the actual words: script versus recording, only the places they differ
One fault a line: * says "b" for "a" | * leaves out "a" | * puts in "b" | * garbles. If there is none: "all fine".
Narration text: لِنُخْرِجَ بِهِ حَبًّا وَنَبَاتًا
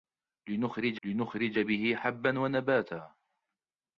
* puts in "لِنُخْرِجَ"